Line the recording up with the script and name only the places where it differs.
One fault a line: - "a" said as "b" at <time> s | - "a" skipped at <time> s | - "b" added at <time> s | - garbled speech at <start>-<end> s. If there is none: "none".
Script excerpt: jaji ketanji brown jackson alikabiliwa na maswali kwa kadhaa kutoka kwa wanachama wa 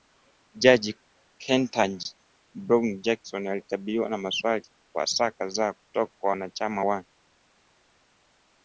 - "saa" added at 5.1 s